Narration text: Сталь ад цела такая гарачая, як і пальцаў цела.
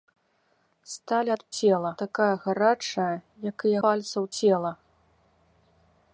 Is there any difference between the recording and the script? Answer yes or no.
no